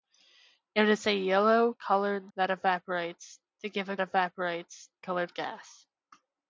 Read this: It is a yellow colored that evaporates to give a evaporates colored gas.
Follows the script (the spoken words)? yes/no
yes